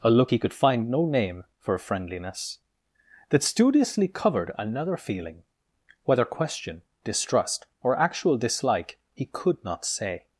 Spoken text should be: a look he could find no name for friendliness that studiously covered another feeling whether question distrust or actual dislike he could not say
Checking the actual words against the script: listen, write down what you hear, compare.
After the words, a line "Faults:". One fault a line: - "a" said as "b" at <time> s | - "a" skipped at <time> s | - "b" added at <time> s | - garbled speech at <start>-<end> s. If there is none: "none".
a look he could find no name for friendliness that studiously covered another feeling whether question distrust or actual dislike he could not say
Faults:
none